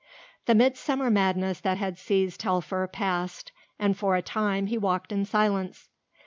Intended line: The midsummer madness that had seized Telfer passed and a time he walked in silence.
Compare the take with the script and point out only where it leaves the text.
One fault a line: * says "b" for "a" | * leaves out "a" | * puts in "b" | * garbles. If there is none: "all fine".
* puts in "for"